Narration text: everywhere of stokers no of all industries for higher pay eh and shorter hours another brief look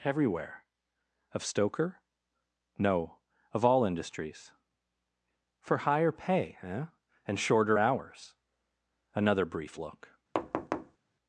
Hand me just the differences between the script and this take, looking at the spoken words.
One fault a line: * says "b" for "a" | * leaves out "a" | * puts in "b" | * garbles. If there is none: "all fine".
* says "stoker" for "stokers"